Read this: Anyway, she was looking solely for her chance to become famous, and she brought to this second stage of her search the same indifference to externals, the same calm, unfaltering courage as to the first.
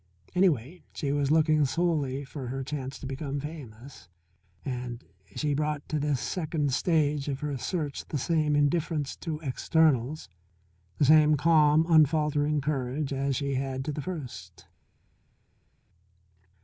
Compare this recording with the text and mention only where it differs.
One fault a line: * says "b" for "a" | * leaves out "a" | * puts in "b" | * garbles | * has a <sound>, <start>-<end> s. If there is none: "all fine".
* puts in "she had"